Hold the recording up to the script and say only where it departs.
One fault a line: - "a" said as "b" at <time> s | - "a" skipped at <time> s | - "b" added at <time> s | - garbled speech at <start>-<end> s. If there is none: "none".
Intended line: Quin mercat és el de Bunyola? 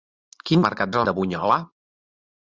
none